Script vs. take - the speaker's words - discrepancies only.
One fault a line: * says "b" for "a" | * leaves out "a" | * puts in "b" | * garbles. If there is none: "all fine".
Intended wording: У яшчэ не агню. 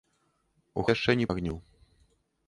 all fine